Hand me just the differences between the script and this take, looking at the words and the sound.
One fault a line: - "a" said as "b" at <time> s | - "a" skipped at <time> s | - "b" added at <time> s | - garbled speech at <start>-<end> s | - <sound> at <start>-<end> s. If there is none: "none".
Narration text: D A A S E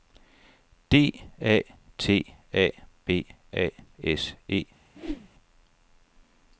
- "T A B" added at 2.0 s
- whoosh at 4.9-5.3 s